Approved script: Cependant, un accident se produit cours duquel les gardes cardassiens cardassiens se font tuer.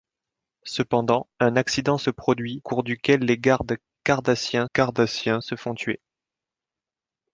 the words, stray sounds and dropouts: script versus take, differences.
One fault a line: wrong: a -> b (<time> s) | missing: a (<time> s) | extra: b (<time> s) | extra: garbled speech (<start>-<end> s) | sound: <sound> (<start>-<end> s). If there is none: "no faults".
no faults